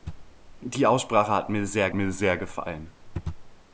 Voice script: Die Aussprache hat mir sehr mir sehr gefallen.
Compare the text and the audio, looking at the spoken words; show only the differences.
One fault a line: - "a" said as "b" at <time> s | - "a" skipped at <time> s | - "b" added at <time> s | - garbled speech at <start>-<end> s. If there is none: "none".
none